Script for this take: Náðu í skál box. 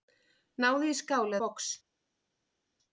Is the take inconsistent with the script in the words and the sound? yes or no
no